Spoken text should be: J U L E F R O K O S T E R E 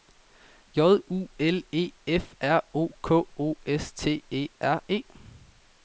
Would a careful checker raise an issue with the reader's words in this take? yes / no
no